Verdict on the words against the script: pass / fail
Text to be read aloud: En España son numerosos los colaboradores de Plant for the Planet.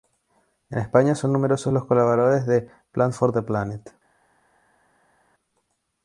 pass